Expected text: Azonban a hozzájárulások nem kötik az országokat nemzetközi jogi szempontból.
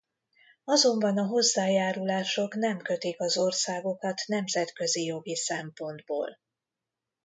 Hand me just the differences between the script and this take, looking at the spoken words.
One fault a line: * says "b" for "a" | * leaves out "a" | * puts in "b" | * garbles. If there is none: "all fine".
all fine